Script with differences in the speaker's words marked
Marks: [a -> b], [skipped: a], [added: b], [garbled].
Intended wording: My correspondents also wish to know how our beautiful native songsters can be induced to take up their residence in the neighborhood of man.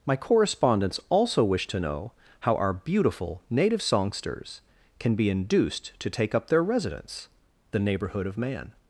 My correspondents also wish to know how our beautiful native songsters can be induced to take up their residence [skipped: in] the neighborhood of man.